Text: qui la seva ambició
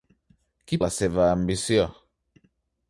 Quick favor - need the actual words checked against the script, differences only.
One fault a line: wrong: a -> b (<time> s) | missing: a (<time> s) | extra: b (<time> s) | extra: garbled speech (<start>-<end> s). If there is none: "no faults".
no faults